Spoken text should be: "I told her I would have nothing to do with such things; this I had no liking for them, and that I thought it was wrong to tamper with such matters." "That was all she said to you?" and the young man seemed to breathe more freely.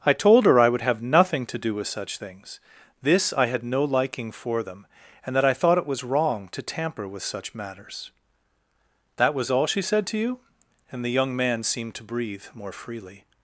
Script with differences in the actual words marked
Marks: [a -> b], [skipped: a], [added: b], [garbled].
"I told her I would have nothing to do with such things; this I had no liking for them, and that I thought it was wrong to tamper with such matters." "That was all she said to you?" and the young man seemed to breathe more freely.